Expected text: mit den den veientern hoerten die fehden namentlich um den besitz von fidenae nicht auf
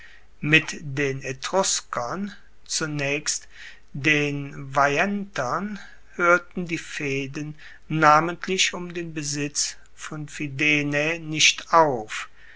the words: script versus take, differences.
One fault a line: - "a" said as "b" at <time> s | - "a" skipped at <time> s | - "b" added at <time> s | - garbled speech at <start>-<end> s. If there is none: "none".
- "etruskern zunaechst" added at 1.2 s